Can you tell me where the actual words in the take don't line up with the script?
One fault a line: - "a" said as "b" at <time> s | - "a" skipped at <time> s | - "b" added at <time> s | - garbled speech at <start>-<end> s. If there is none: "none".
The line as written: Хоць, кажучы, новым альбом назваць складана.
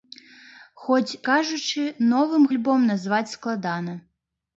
none